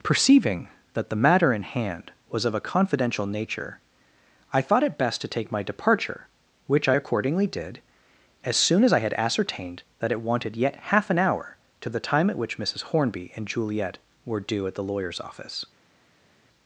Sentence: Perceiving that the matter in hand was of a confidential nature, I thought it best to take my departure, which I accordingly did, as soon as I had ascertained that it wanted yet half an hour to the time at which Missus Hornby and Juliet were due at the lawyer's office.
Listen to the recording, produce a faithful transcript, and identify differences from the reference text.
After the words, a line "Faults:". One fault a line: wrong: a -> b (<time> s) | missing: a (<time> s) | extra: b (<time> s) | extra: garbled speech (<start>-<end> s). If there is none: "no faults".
Perceiving that the matter in hand was of a confidential nature, I thought it best to take my departure, which I accordingly did, as soon as I had ascertained that it wanted yet half an hour to the time at which Missus Hornby and Juliet were due at the lawyer's office.
Faults:
no faults